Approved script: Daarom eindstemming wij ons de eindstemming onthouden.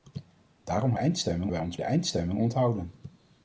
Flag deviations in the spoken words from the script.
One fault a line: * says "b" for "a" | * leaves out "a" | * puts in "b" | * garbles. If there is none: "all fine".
all fine